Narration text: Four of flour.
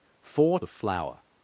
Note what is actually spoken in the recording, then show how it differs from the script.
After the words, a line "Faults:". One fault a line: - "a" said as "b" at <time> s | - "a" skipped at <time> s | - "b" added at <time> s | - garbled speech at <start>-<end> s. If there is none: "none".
Four of flour.
Faults:
none